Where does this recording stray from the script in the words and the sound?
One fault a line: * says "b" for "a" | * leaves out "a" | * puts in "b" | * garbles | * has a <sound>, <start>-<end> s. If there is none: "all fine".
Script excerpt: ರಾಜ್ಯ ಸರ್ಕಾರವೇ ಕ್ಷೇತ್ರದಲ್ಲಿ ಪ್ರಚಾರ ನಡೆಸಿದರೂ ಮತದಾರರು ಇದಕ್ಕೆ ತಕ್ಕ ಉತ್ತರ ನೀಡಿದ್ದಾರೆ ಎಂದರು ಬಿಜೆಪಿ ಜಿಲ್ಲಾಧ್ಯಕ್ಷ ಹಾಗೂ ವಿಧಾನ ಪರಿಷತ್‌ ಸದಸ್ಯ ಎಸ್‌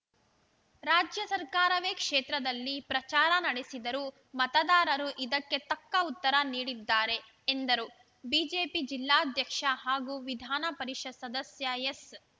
all fine